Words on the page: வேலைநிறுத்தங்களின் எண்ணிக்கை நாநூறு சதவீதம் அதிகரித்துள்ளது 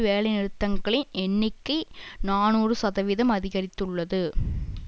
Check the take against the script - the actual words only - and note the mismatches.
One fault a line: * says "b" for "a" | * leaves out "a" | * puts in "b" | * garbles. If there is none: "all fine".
all fine